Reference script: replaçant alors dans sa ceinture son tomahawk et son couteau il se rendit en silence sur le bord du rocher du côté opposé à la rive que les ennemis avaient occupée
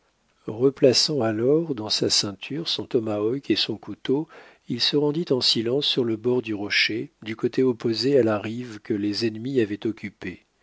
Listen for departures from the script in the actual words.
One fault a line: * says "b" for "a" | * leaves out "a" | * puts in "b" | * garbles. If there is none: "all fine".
all fine